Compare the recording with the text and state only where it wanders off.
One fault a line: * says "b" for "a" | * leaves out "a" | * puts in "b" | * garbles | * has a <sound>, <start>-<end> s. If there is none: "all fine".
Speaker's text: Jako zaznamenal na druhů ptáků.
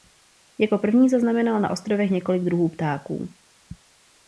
* puts in "první"
* puts in "ostrovech několik"